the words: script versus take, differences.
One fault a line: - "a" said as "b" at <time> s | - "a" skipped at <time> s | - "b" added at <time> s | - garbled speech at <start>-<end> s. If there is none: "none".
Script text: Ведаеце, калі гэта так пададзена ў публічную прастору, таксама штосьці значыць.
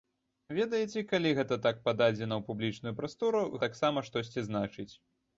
none